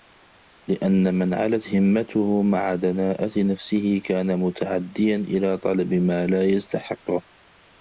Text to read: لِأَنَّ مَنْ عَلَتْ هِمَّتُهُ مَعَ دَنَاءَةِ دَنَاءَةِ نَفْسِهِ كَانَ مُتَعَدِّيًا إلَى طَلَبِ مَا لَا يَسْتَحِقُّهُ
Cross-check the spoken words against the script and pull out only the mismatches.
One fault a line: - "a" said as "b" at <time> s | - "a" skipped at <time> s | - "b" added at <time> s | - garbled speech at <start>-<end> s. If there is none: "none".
- "دَنَاءَةِ" skipped at 3.3 s